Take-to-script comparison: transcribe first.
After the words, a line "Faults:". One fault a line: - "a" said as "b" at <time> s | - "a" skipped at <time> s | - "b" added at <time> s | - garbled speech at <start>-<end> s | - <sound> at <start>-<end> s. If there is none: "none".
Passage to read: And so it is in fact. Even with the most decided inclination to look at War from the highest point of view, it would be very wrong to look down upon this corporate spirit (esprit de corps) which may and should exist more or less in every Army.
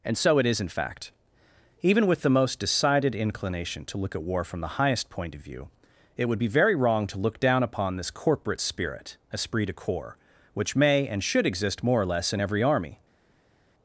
And so it is in fact. Even with the most decided inclination to look at War from the highest point of view, it would be very wrong to look down upon this corporate spirit (esprit de corps) which may and should exist more or less in every Army.
Faults:
none